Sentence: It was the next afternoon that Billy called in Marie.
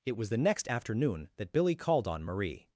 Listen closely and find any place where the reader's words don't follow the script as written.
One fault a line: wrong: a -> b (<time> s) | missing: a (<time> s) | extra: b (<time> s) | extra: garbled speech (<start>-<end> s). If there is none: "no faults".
wrong: in -> on (2.1 s)